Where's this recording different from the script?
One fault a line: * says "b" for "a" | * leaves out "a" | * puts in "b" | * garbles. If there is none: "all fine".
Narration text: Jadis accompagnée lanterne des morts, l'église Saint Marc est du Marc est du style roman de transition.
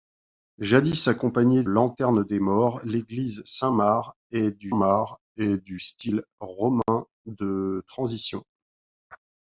all fine